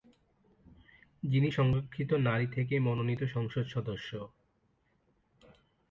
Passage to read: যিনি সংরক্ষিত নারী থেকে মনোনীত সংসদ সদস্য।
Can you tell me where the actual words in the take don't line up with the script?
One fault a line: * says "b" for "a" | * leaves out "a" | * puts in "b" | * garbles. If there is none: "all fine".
all fine